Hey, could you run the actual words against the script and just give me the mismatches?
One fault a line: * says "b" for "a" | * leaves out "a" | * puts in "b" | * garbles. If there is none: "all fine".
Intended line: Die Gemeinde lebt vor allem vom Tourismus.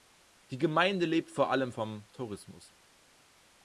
all fine